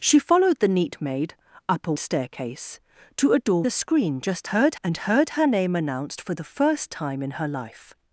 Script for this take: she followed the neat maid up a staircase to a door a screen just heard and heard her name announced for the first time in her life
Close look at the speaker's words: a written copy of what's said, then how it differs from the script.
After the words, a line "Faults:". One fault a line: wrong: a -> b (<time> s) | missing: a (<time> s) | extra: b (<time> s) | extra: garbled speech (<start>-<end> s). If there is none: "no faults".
she followed the neat maid up a staircase to a door a screen just heard and heard her name announced for the first time in her life
Faults:
no faults